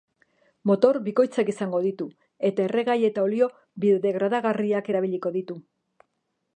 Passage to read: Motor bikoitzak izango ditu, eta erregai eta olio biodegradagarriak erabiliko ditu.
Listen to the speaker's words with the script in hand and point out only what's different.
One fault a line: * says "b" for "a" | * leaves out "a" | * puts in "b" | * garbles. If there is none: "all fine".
all fine